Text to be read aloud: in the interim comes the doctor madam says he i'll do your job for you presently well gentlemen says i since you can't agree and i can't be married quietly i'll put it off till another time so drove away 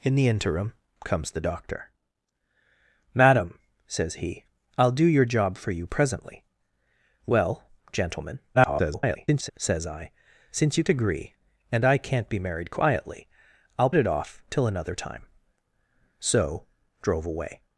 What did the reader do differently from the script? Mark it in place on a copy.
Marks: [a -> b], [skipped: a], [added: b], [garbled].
in the interim comes the doctor madam says he i'll do your job for you presently well gentlemen [garbled] says i since you [skipped: can't] agree and i can't be married quietly i'll [skipped: put] it off till another time so drove away